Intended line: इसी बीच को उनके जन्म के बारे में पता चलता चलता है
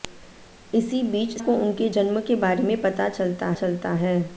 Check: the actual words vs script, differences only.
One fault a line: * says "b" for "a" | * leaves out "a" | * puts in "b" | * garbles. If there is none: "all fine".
all fine